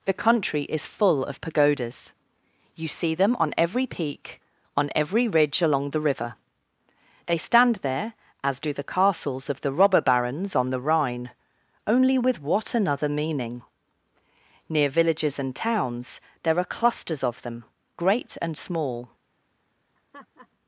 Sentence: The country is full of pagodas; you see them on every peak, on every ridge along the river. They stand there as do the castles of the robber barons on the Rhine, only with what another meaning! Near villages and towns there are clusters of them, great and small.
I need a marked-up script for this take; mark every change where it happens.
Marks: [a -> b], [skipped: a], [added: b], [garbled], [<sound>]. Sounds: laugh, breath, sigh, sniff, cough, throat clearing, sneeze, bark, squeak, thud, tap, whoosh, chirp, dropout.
The country is full of pagodas; you see them on every peak, on every ridge along the river. They stand there as do the castles of the robber barons on the Rhine, only with what another meaning! Near villages and towns there are clusters of them, great and small. [laugh]